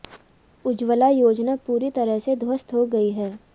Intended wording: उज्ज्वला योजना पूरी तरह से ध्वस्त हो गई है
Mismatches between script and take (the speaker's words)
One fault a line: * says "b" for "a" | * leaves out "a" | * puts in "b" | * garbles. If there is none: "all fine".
all fine